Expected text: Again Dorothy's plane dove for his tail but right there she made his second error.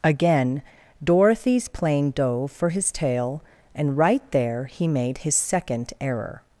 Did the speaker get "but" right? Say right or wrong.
wrong